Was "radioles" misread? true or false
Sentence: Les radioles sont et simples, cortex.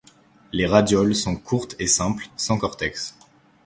false